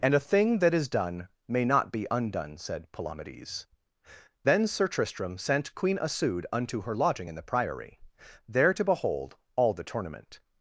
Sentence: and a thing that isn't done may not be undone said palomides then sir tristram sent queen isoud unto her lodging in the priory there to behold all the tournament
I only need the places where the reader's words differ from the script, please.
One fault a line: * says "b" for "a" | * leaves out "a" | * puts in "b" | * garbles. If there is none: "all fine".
* says "is" for "isn't"